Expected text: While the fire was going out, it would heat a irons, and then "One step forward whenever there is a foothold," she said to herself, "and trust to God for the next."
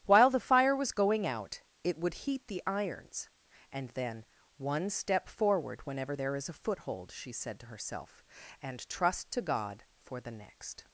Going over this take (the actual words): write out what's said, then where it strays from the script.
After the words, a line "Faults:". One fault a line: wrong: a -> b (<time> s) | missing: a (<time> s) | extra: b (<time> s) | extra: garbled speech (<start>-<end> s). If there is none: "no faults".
While the fire was going out, it would heat the irons, and then "One step forward whenever there is a foothold," she said to herself, "and trust to God for the next."
Faults:
wrong: a -> the (2.5 s)